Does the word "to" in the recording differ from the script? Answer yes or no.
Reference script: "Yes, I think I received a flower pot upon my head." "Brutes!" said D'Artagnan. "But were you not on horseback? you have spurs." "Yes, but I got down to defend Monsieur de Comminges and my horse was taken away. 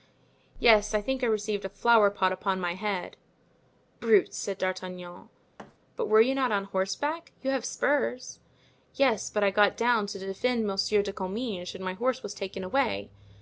no